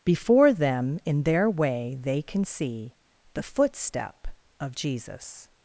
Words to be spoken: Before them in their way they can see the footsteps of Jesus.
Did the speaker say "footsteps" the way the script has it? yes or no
no